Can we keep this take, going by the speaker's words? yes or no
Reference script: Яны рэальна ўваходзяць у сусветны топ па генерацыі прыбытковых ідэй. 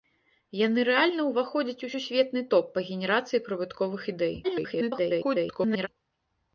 no